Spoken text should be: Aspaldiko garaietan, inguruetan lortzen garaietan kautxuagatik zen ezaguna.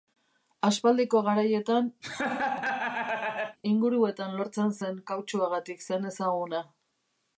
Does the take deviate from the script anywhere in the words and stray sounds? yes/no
yes